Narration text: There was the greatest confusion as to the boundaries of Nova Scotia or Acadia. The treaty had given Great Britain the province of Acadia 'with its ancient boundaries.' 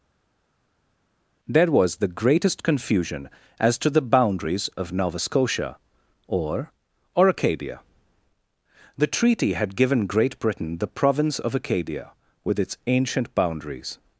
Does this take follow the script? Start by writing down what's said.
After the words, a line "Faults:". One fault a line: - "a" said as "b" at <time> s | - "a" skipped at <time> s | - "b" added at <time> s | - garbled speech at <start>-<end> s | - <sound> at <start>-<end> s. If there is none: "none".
There was the greatest confusion as to the boundaries of Nova Scotia or or Acadia. The treaty had given Great Britain the province of Acadia 'with its ancient boundaries.'
Faults:
- "or" added at 7.1 s